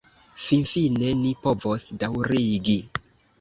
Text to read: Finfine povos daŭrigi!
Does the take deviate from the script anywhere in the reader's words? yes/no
yes